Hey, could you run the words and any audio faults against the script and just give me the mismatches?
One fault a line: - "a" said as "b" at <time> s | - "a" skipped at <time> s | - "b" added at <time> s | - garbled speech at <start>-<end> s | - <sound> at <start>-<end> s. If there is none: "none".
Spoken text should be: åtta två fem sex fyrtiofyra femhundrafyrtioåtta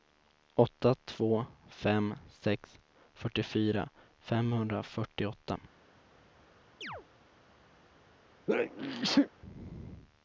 - chirp at 6.8-7.1 s
- sneeze at 8.5-9.3 s